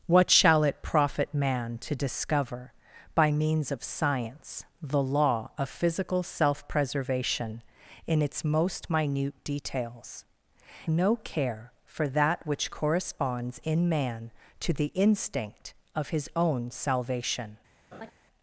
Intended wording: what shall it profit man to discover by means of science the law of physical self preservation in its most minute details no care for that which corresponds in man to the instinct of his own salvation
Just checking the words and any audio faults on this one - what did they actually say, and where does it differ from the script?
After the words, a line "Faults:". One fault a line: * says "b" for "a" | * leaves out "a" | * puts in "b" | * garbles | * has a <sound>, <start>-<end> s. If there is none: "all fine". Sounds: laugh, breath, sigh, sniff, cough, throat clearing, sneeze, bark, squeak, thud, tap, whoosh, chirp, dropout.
what shall it profit man to discover by means of science the law of physical self preservation in its most minute details no care for that which corresponds in man to the instinct of his own salvation
Faults:
* has a laugh, 17.9-18.1 s